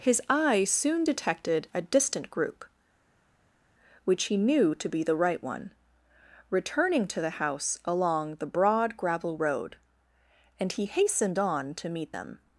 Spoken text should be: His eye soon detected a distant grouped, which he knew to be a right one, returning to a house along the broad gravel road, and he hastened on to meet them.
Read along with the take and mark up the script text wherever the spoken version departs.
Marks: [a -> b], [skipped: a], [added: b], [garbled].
His eye soon detected a distant [grouped, -> group] which he knew to be [a -> the] right one, returning to [a -> the] house along the broad gravel road, and he hastened on to meet them.